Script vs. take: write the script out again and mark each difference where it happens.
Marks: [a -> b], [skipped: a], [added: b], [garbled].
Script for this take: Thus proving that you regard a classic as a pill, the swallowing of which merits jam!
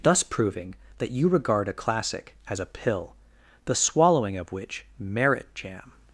Thus proving that you regard a classic as a pill, the swallowing of which [merits -> merit] jam!